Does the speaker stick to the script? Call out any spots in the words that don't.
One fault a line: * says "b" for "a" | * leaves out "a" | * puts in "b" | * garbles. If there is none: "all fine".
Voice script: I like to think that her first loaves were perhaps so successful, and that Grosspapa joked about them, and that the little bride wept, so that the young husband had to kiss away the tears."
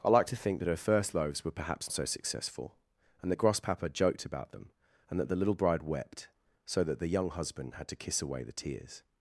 all fine